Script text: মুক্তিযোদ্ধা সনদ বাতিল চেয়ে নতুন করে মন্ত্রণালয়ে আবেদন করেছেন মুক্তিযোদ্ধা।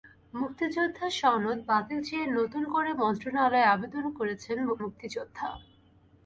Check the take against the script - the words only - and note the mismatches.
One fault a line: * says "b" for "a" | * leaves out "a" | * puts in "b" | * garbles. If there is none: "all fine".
all fine